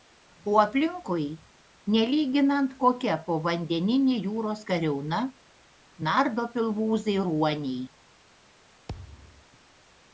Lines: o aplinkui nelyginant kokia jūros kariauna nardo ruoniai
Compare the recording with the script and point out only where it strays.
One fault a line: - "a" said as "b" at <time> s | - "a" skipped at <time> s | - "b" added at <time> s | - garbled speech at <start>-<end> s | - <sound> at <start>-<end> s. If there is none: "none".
- "povandeninė" added at 3.3 s
- "pilvūzai" added at 6.6 s
- thud at 8.9-9.5 s